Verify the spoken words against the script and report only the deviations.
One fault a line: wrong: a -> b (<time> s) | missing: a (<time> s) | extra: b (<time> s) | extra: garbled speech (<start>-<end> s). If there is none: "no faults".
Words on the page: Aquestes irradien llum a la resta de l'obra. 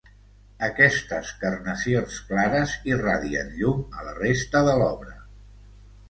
extra: carnacions clares (1.4 s)